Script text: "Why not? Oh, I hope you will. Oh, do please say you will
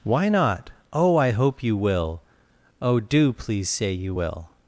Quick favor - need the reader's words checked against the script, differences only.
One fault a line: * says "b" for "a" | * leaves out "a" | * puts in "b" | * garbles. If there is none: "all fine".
all fine